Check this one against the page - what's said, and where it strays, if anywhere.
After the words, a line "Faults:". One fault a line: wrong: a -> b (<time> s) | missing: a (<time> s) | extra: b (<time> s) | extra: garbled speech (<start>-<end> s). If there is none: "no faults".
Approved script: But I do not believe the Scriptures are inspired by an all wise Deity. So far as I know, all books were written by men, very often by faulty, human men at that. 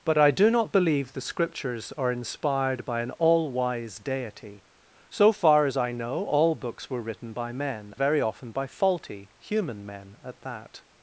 But I do not believe the Scriptures are inspired by an all wise Deity. So far as I know, all books were written by men, very often by faulty, human men at that.
Faults:
no faults